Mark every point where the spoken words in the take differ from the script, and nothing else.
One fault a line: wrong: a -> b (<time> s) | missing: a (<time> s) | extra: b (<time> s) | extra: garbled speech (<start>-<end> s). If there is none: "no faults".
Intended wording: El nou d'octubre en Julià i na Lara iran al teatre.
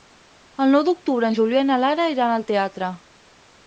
no faults